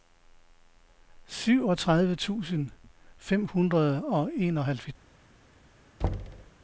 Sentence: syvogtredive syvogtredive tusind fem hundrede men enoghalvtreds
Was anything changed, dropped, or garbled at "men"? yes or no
yes